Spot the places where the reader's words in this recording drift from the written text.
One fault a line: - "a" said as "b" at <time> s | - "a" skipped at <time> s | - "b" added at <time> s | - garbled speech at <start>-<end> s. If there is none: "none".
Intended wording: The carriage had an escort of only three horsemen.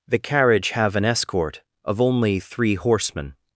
- "had" said as "have" at 0.7 s